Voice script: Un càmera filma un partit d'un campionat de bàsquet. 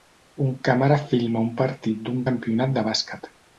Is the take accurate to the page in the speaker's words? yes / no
yes